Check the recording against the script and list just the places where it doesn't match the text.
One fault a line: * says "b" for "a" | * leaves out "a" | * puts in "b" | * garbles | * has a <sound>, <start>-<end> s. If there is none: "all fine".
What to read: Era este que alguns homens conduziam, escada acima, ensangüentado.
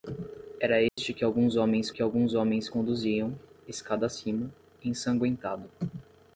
* has a dropout, 0.9-1.0 s
* puts in "que alguns homens"